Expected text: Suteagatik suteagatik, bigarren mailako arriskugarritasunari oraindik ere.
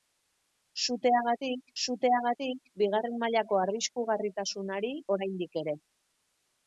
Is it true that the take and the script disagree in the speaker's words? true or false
false